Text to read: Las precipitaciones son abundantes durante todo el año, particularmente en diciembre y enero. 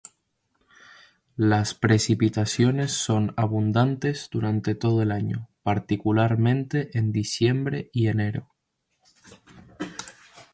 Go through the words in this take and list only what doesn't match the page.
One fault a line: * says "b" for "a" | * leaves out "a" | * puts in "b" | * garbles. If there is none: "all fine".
all fine